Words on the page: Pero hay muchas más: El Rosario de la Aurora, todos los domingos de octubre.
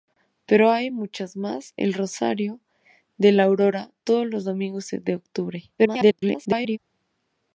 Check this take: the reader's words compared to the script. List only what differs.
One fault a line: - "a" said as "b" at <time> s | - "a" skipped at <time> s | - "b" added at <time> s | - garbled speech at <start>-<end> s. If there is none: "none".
- garbled speech at 5.8-6.8 s